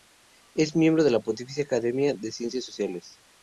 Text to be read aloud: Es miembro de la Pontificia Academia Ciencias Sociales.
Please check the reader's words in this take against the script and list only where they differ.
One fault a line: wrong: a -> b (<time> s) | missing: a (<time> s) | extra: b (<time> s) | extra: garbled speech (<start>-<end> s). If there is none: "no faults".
extra: de (2.2 s)